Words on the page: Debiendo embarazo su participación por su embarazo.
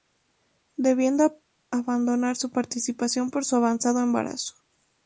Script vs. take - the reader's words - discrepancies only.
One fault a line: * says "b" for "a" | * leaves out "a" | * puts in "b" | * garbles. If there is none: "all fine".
* says "abandonar" for "embarazo"
* puts in "avanzado"